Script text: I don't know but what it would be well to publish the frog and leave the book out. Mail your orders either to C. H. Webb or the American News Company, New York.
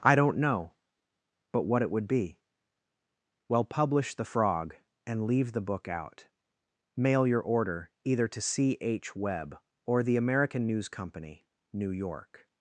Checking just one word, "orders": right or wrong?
wrong